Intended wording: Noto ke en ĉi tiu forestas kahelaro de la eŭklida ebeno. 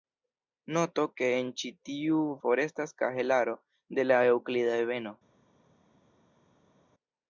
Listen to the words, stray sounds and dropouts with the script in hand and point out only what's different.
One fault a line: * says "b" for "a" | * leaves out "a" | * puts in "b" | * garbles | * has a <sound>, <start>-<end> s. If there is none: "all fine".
all fine